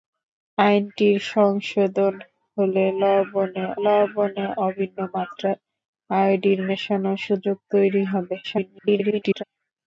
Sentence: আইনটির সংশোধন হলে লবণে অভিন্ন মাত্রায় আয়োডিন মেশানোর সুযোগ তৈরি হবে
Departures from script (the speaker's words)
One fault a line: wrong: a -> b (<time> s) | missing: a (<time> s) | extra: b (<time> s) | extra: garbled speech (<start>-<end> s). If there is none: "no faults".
extra: লবণে (3.8 s)
extra: garbled speech (8.4-9.4 s)